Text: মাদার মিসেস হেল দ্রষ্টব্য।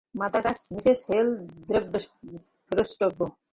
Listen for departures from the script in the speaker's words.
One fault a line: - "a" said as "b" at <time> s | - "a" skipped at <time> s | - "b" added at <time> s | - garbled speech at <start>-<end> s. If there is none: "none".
- "চার্চ" added at 0.4 s